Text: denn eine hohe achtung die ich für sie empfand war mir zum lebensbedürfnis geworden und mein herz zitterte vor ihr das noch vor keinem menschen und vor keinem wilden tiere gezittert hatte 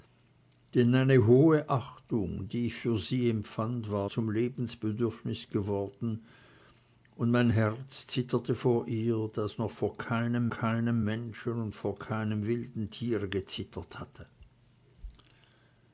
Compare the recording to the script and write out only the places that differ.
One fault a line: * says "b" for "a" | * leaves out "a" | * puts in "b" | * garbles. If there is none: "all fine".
* leaves out "mir"
* puts in "keinem"